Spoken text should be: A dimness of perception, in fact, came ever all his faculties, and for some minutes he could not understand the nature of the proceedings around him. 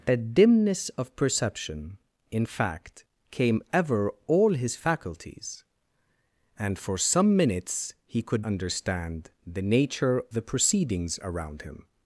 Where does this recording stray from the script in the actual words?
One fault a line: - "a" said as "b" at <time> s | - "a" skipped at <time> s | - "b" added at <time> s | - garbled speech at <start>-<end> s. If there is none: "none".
- "not" skipped at 8.4 s
- "of" skipped at 10.2 s